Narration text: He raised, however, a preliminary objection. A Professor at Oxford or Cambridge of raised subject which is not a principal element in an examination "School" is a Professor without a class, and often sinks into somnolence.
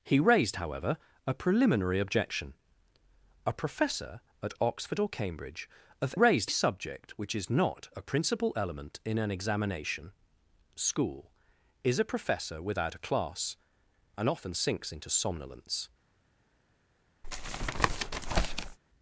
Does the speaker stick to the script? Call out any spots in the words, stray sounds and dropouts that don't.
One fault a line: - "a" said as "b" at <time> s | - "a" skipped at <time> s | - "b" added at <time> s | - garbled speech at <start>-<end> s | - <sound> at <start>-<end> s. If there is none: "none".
- tap at 17.2-18.8 s